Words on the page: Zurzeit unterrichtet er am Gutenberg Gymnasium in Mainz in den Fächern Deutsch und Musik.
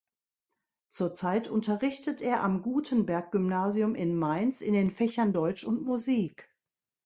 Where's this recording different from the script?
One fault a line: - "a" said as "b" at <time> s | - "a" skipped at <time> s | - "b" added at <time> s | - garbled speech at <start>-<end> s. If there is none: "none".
none